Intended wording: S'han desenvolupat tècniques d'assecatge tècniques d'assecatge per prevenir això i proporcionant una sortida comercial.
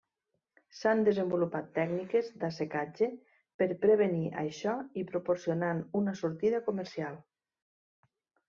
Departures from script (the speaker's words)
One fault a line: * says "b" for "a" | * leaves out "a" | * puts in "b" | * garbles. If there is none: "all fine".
* leaves out "tècniques d'assecatge"